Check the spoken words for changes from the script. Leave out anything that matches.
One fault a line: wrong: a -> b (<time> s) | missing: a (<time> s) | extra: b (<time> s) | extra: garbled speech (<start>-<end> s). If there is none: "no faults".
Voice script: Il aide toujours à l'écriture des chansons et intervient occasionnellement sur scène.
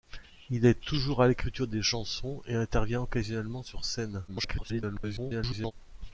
extra: garbled speech (4.3-5.7 s)